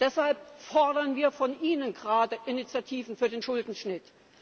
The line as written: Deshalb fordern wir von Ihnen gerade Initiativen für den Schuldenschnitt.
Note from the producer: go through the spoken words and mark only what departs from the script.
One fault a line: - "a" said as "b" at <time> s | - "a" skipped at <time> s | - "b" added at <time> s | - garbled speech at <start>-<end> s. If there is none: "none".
none